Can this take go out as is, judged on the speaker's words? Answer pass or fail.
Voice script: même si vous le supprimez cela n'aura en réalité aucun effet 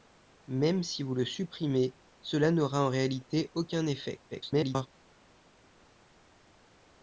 fail